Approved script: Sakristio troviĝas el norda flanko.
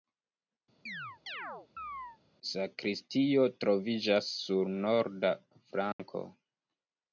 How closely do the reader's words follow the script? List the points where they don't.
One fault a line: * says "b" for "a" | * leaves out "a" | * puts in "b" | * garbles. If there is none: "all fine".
* says "sur" for "el"